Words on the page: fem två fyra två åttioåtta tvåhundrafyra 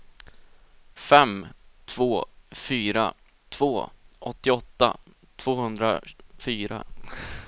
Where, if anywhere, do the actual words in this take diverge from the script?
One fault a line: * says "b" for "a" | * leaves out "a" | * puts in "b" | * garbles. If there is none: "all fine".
all fine